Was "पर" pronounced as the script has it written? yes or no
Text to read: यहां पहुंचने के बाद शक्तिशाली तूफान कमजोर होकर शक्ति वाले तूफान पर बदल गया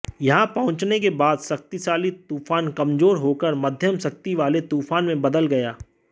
no